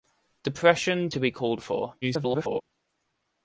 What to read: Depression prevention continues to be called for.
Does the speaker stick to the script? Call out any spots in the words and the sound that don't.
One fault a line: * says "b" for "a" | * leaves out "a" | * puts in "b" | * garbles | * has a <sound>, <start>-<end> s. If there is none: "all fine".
* leaves out "prevention continues"
* garbles